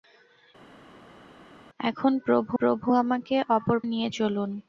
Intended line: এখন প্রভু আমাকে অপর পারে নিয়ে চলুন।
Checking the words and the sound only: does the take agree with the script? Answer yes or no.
no